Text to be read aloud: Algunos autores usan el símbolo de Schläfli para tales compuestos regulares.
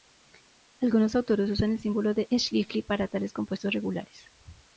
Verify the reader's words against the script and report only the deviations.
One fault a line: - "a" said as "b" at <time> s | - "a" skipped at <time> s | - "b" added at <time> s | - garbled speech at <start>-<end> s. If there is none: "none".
none